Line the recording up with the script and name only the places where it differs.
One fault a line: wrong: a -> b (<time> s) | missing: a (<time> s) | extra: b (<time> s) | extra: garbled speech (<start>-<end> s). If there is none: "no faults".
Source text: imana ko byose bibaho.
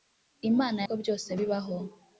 no faults